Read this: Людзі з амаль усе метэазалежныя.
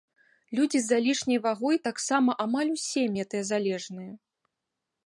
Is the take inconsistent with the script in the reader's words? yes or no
yes